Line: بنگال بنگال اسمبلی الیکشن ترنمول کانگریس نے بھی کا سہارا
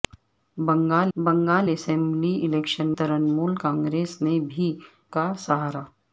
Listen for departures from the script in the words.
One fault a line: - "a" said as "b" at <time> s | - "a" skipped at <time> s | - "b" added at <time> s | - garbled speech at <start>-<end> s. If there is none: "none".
none